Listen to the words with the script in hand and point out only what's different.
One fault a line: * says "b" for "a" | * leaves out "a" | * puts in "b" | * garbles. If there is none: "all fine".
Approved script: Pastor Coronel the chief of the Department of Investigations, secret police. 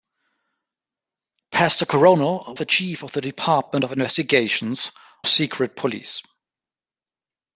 all fine